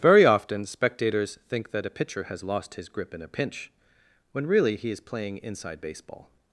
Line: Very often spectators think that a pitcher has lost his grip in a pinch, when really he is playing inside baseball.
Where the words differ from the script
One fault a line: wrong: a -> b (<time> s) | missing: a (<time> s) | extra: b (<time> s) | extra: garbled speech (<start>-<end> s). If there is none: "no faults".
no faults